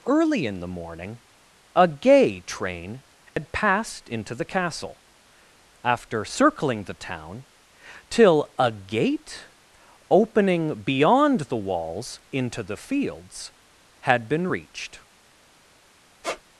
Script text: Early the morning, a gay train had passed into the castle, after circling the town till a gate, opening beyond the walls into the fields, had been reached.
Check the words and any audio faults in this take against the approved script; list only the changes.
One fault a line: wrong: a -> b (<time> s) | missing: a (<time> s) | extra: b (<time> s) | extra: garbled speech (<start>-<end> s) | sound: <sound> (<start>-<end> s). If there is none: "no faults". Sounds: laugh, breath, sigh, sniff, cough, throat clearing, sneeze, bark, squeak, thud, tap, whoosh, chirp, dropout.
extra: in (0.5 s)
sound: dropout (3.3-3.4 s)
sound: squeak (16.2-16.4 s)